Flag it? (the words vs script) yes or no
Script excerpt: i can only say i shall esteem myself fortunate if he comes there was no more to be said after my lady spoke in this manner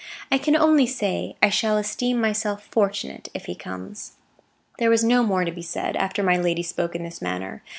no